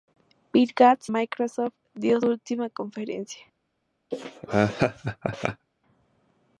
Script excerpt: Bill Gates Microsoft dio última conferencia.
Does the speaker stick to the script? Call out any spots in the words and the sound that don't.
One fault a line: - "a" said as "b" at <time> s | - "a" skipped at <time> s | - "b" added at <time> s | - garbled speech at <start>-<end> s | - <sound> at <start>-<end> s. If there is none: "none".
- laugh at 4.1-5.7 s